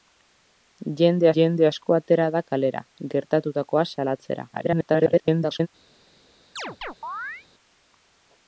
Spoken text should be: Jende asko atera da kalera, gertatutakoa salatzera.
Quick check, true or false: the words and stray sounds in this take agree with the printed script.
false